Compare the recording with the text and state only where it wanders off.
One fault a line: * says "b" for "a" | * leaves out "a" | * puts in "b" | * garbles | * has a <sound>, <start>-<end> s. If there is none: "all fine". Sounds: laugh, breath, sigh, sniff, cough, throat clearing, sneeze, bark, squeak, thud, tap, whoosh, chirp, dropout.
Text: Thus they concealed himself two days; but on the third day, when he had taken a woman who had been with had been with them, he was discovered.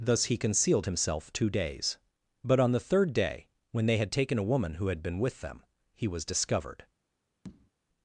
* says "he" for "they"
* says "they" for "he"
* leaves out "had been with"
* has a tap, 7.4-7.7 s